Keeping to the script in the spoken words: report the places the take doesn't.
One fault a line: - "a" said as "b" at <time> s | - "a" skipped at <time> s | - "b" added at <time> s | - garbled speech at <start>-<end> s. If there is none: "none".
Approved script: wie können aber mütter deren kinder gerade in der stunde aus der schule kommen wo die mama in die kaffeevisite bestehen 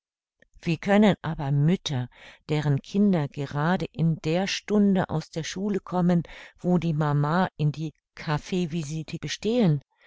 none